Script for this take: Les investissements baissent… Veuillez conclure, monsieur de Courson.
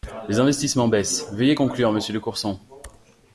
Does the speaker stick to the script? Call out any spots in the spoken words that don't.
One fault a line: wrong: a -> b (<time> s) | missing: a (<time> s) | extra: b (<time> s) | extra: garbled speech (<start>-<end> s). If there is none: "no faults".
no faults